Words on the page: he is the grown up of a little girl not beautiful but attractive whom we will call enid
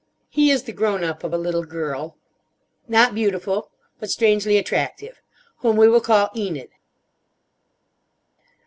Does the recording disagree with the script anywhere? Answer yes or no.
yes